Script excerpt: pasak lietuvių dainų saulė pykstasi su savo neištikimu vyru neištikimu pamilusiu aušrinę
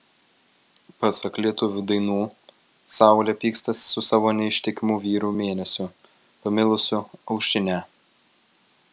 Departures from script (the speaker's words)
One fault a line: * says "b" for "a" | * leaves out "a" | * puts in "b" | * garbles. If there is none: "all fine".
* says "mėnesiu" for "neištikimu"